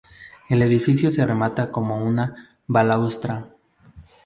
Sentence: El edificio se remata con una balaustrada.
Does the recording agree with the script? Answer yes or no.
yes